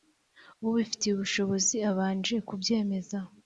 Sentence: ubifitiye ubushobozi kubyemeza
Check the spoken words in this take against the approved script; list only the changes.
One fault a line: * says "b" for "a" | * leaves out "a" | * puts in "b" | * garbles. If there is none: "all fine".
* puts in "abanje"